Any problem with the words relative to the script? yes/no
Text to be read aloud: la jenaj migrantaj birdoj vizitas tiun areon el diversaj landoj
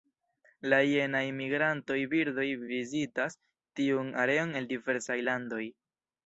no